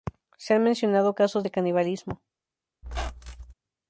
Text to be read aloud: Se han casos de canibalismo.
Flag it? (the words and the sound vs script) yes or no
yes